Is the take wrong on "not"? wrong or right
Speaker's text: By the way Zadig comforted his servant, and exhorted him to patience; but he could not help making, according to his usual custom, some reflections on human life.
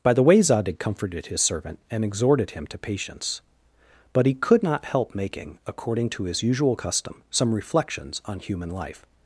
right